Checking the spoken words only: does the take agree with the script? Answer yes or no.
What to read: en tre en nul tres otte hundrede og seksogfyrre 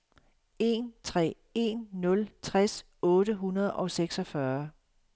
yes